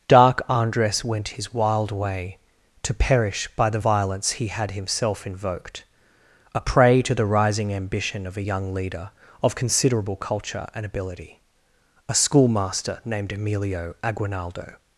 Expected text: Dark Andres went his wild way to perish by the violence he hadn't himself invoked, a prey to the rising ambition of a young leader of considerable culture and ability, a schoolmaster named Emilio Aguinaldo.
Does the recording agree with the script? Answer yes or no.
no